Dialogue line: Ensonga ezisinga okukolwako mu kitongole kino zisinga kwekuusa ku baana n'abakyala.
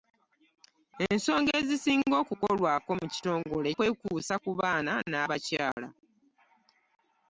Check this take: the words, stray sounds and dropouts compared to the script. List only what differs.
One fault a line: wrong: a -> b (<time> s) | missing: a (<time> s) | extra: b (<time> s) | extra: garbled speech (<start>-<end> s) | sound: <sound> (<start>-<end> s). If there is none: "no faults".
missing: kino zisinga (3.7 s)
sound: dropout (5.7-5.8 s)